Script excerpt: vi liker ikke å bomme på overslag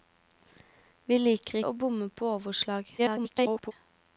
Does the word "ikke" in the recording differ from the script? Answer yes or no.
yes